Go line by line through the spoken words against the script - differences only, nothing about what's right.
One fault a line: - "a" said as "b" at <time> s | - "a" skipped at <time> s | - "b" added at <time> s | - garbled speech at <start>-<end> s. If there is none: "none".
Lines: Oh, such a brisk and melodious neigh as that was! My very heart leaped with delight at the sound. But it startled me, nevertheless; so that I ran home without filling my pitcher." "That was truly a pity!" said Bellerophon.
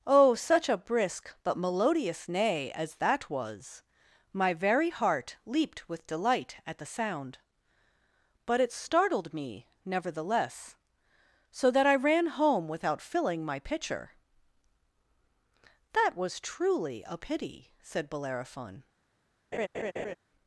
- "and" said as "but" at 1.4 s